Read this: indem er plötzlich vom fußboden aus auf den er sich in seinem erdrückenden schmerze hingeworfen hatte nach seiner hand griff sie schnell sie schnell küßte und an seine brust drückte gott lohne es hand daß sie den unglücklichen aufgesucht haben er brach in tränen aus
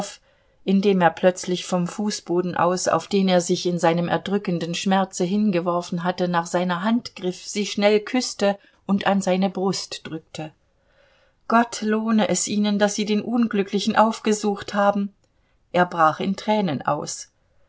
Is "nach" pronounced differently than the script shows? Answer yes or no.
no